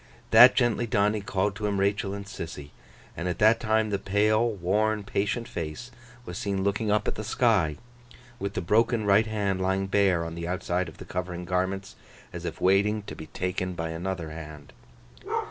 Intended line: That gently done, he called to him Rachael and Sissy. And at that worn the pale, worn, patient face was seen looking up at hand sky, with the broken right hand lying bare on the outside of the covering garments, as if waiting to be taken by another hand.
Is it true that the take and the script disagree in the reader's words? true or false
true